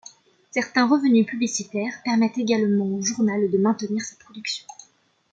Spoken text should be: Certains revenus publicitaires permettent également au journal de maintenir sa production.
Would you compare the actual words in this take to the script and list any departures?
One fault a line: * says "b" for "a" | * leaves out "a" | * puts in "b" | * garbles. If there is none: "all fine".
all fine